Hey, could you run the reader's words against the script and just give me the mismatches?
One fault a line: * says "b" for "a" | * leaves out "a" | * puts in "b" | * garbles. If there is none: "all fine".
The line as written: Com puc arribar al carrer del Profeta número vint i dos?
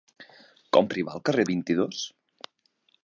* leaves out "puc"
* leaves out "del Profeta número"